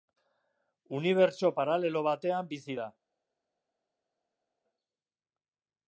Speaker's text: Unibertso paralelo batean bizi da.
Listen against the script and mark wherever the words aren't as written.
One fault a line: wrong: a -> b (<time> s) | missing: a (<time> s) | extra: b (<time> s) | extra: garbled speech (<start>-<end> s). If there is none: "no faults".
no faults